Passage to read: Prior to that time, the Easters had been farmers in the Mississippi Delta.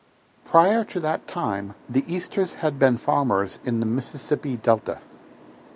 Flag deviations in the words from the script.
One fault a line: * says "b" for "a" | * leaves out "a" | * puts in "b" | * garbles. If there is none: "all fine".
all fine